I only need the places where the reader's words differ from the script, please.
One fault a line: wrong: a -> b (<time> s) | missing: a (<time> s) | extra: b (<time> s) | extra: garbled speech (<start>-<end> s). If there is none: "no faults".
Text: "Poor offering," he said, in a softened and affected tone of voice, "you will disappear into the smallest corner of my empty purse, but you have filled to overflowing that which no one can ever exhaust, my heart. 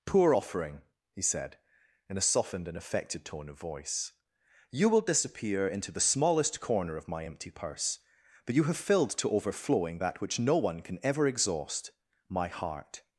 no faults